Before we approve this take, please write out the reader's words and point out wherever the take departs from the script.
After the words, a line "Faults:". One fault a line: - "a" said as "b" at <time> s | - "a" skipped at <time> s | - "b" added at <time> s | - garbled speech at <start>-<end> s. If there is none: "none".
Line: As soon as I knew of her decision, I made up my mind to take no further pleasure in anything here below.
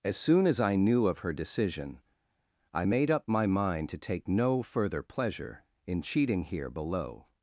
As soon as I knew of her decision, I made up my mind to take no further pleasure in cheating here below.
Faults:
- "anything" said as "cheating" at 6.0 s